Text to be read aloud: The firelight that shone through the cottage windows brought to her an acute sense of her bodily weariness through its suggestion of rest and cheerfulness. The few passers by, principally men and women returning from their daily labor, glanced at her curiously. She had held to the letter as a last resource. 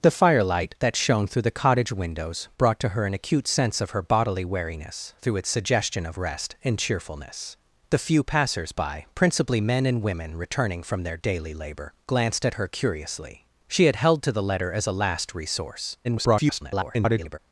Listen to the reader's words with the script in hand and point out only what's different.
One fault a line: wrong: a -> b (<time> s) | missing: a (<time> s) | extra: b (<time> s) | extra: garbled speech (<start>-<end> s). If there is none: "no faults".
extra: garbled speech (16.0-17.4 s)